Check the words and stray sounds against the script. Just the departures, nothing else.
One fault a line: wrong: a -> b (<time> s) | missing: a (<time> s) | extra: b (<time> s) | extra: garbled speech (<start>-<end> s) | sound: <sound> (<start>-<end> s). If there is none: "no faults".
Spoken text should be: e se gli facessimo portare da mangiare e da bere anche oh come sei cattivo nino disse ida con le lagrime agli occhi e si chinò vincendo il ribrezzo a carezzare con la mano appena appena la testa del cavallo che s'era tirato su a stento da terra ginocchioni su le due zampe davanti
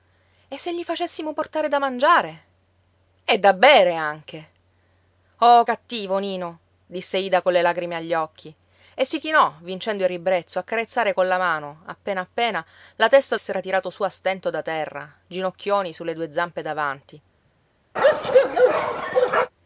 missing: come sei (5.6 s)
missing: del cavallo che (13.4 s)
sound: bark (18.0-19.5 s)